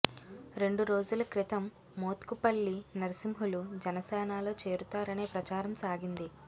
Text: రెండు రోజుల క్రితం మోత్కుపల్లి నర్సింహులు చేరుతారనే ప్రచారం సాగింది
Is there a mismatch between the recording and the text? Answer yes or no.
yes